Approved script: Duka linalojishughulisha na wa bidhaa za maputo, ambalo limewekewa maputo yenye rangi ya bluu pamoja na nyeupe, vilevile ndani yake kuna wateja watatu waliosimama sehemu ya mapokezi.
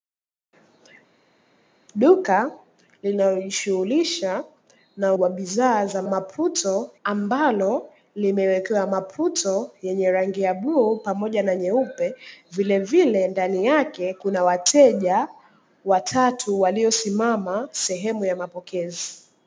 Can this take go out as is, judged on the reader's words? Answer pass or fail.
pass